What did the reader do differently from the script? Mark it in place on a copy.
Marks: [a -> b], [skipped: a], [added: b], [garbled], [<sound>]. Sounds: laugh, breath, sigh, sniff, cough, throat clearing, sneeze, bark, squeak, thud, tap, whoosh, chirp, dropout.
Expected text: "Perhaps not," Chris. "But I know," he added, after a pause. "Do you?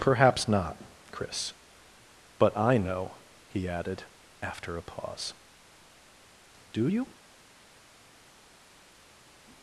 "Perhaps not," Chris. "But I know," he added, after a pause. "Do you?